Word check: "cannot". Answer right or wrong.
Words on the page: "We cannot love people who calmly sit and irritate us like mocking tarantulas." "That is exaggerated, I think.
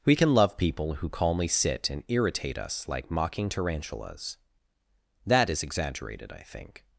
wrong